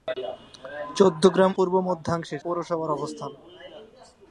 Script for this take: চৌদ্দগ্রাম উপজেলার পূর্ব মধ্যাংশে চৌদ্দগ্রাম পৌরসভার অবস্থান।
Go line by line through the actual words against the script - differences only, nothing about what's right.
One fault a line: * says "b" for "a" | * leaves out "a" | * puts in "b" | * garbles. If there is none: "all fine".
* leaves out "উপজেলার"
* leaves out "চৌদ্দগ্রাম"